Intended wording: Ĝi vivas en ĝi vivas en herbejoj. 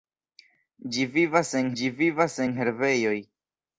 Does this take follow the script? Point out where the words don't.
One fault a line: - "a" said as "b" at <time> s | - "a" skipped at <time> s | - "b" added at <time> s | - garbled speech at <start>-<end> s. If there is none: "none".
none